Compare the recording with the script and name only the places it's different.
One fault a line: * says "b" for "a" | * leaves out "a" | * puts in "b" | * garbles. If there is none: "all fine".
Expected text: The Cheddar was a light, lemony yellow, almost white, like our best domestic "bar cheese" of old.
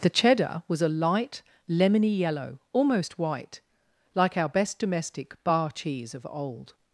all fine